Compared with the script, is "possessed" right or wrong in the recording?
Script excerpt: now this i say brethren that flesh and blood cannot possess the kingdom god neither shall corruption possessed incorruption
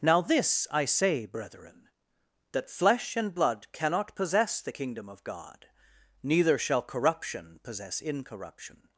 wrong